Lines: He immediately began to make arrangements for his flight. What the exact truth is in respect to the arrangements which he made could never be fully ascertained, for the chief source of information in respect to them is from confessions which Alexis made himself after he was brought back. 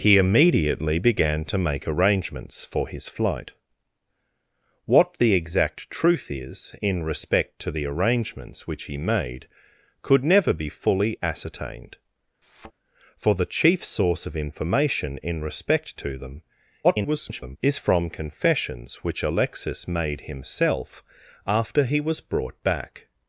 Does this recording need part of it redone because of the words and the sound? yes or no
yes